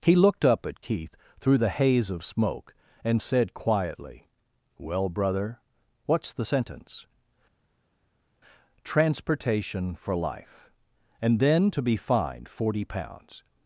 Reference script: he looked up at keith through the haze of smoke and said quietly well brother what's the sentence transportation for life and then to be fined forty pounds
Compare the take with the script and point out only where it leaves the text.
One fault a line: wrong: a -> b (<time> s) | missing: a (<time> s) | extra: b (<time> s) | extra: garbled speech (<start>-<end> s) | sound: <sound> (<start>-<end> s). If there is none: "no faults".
no faults